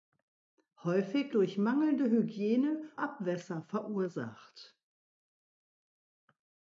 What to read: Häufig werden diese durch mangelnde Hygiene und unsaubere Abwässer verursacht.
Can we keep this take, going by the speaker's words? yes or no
no